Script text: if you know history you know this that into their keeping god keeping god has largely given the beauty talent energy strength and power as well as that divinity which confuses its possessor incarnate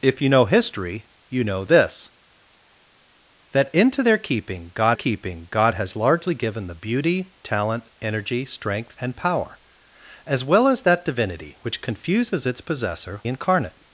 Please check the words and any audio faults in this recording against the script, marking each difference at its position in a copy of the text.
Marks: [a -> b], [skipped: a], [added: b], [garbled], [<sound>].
if you know history you know this that into their keeping god keeping god has largely given the beauty talent energy strength and power as well as that divinity which confuses its possessor incarnate